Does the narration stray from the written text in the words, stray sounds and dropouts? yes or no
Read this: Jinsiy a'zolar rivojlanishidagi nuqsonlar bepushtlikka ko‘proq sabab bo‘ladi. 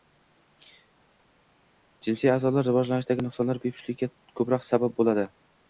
no